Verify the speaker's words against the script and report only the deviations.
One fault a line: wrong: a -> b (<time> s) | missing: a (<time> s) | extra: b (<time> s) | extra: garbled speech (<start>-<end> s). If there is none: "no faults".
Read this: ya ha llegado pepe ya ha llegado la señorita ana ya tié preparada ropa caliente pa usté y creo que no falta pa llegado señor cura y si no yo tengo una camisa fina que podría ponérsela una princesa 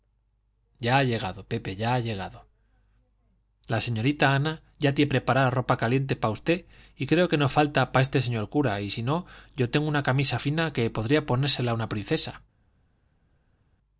wrong: llegado -> este (8.1 s)